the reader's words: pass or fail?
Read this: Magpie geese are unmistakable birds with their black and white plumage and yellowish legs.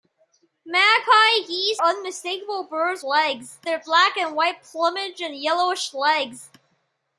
fail